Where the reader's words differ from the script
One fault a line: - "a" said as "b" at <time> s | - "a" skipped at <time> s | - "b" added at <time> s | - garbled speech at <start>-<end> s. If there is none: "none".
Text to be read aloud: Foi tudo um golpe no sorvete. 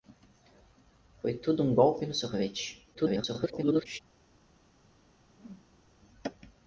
- garbled speech at 2.9-4.0 s